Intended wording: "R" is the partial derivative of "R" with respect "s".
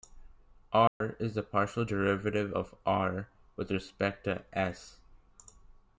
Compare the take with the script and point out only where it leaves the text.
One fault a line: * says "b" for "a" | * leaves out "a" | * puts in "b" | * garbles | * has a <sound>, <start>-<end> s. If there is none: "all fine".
* has a dropout, 0.9-1.0 s
* puts in "to"